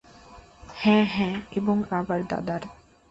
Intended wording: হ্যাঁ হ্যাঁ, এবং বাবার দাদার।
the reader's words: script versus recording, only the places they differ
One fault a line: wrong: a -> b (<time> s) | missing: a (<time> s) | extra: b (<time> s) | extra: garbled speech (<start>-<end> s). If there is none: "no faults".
no faults